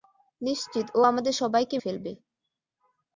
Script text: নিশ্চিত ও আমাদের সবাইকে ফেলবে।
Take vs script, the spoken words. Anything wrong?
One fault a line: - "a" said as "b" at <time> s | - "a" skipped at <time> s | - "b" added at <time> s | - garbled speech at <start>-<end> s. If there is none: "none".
none